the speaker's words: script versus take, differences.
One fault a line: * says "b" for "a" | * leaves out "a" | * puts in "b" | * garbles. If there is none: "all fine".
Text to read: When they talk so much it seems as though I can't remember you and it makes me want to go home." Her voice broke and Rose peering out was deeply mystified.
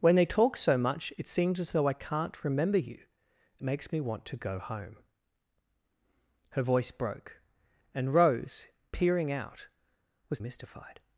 * leaves out "and it"
* leaves out "deeply"